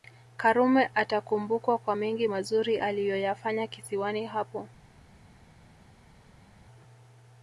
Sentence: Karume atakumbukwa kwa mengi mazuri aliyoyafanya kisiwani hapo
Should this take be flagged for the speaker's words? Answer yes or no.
no